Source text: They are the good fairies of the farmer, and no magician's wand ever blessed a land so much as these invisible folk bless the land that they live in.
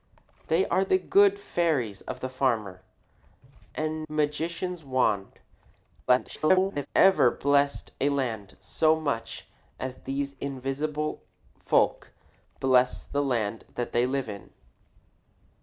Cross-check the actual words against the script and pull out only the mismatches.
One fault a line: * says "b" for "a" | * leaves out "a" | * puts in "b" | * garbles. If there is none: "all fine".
* leaves out "no"
* garbles